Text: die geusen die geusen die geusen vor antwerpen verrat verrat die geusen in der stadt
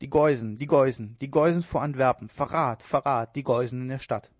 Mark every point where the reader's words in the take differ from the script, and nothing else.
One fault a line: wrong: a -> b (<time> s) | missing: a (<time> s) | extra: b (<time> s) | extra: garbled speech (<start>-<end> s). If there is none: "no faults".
no faults